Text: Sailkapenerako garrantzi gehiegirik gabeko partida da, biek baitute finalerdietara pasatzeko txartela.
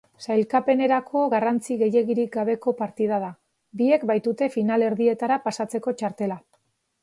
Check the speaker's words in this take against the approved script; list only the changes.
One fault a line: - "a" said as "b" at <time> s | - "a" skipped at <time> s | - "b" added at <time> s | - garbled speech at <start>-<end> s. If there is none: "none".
none